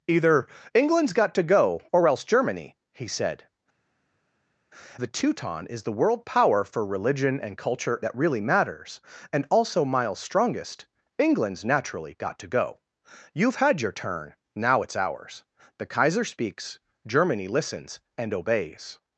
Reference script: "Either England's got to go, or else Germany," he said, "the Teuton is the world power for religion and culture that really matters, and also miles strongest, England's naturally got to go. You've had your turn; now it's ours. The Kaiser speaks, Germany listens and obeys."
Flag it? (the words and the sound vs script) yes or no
no